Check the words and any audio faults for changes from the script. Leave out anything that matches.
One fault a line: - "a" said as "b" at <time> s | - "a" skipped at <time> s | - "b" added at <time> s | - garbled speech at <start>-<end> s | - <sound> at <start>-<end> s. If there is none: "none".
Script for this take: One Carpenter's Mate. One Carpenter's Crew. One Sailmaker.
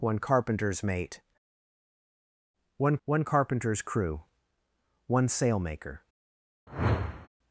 - "one" added at 3.1 s
- whoosh at 6.7-7.3 s